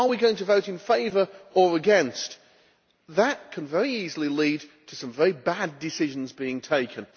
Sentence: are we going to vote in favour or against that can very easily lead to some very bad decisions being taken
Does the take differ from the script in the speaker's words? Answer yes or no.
no